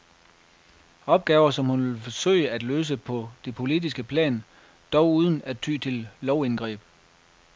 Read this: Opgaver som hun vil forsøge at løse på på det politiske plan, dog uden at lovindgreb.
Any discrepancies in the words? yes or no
yes